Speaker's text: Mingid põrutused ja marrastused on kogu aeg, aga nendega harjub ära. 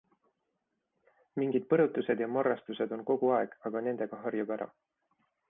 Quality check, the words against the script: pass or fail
pass